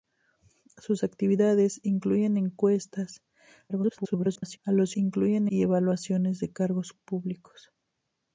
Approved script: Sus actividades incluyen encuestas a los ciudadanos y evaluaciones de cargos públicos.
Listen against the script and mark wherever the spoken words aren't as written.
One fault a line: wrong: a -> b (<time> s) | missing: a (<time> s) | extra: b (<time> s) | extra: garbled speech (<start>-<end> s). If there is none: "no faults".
extra: garbled speech (3.7-4.6 s)
wrong: ciudadanos -> incluyen (4.9 s)